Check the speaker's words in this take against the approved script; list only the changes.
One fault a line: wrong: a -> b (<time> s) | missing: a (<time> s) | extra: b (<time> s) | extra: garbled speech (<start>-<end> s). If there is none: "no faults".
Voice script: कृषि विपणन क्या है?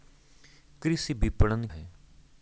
missing: क्या (1.7 s)